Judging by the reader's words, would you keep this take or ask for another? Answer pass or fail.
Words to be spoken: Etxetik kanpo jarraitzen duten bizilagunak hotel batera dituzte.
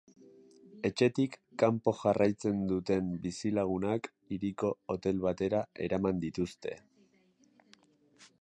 fail